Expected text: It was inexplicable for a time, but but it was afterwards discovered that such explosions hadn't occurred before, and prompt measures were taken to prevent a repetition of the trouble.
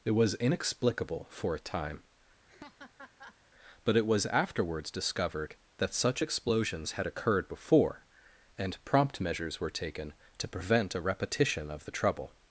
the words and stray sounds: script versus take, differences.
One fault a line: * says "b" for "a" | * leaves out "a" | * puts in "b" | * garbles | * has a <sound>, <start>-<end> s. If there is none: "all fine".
* has a laugh, 2.5-3.4 s
* leaves out "but"
* says "had" for "hadn't"